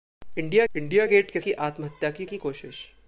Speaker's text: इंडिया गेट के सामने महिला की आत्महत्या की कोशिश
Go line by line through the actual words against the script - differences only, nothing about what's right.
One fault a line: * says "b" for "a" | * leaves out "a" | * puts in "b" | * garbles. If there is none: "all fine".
* puts in "इंडिया"
* says "की आत्महत्या" for "सामने महिला"
* leaves out "आत्महत्या"